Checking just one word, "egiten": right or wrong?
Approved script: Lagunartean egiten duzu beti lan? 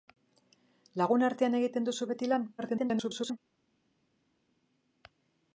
right